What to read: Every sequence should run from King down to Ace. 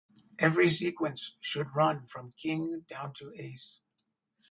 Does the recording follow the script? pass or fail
pass